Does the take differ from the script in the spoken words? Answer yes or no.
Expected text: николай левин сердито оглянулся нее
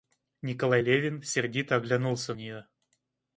no